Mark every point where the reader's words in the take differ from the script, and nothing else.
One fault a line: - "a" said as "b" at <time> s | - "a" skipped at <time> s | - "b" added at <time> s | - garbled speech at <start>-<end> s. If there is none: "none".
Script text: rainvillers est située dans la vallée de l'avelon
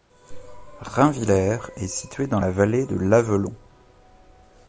none